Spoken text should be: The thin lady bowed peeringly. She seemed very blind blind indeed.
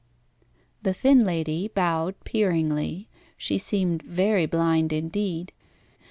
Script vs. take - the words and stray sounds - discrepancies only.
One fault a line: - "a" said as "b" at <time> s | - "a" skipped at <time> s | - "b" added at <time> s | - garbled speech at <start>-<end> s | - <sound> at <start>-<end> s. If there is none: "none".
- "blind" skipped at 4.9 s